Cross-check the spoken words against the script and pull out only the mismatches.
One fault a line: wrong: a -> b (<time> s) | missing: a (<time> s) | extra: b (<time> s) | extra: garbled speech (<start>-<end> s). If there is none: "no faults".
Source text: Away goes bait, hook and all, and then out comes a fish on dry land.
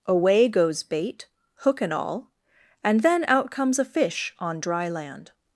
no faults